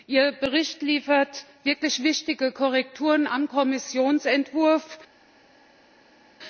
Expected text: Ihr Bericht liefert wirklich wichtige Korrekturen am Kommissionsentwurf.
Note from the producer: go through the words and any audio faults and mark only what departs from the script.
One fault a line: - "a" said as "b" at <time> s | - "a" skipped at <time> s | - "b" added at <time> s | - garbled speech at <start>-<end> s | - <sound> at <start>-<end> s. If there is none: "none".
none